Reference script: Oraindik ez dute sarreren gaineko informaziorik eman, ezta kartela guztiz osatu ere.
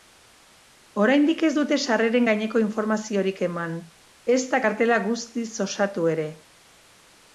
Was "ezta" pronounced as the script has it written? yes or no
yes